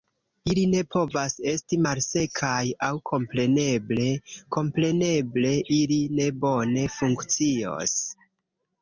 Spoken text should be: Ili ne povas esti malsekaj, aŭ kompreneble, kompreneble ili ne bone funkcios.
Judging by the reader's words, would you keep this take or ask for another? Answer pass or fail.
pass